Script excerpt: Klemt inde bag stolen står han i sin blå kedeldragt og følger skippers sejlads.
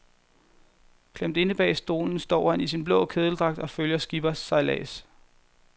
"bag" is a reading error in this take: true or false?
false